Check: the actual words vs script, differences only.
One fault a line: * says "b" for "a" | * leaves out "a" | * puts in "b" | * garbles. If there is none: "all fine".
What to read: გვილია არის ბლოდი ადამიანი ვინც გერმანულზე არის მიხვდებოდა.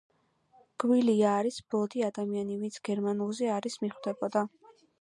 all fine